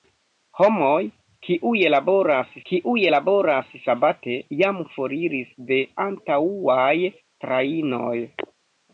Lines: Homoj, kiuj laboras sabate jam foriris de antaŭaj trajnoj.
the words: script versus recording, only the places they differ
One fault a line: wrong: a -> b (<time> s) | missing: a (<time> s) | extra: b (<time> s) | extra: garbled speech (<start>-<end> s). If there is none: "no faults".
extra: kiuj laboras (2.7 s)